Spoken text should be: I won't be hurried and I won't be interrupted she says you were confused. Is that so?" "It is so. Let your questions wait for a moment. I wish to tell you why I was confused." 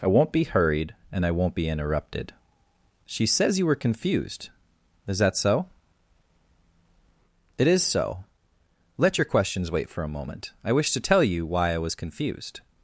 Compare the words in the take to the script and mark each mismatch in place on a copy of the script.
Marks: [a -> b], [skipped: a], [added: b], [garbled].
I won't be hurried and I won't be interrupted she says you were confused. Is that so?" "It is so. Let your questions wait for a moment. I wish to tell you why I was confused."